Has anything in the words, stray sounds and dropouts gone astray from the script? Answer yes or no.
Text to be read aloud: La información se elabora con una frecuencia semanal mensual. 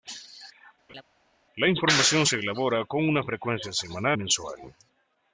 yes